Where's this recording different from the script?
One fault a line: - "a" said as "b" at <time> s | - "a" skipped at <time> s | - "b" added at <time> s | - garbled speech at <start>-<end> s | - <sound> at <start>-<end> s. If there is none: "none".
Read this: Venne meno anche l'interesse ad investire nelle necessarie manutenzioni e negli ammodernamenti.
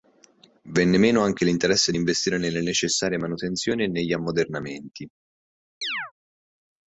- chirp at 5.8-6.1 s